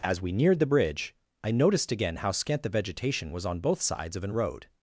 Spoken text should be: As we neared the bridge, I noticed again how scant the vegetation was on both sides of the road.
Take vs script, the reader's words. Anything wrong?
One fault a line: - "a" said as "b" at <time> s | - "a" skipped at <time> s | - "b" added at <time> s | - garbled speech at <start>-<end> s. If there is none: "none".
- "the" said as "an" at 4.2 s